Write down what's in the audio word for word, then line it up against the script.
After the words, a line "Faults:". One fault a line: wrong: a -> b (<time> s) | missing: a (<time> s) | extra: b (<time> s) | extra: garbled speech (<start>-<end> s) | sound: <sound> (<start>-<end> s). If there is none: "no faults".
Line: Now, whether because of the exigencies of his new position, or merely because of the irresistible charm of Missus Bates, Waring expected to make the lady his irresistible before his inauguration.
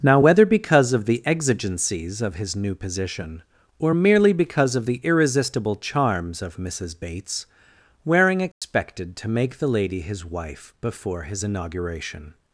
Now, whether because of the exigencies of his new position, or merely because of the irresistible charms of Missus Bates, Waring expected to make the lady his wife before his inauguration.
Faults:
wrong: charm -> charms (5.8 s)
sound: dropout (8.5-8.6 s)
wrong: irresistible -> wife (10.3 s)